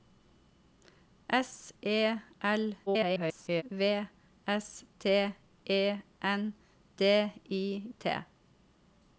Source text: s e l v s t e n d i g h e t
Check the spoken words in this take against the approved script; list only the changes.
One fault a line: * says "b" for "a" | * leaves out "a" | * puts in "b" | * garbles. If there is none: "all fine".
* garbles
* leaves out "g h e"